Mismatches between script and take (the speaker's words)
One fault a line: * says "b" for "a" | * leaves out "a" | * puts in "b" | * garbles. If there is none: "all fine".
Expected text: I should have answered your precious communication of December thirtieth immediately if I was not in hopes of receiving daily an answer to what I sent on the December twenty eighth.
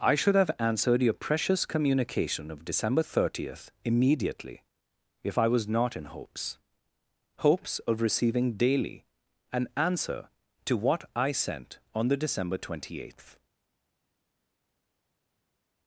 * puts in "hopes"